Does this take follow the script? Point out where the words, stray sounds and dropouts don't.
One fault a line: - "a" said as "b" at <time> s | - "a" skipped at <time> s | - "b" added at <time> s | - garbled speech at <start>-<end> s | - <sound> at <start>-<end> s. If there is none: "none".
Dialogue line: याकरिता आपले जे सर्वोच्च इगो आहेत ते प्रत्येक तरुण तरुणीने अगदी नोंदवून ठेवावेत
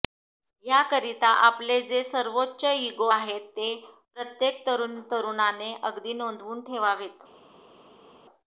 none